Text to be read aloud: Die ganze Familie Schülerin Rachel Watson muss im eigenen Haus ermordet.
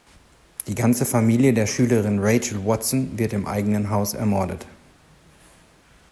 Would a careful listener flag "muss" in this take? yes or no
yes